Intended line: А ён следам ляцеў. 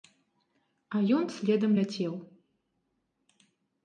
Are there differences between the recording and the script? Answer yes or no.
no